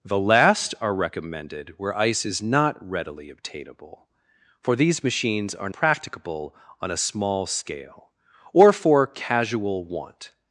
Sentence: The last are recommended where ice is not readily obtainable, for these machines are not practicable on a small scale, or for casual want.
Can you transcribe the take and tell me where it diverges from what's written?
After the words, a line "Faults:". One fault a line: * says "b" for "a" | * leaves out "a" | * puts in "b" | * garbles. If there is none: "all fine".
The last are recommended where ice is not readily obtainable, for these machines are practicable on a small scale, or for casual want.
Faults:
* leaves out "not"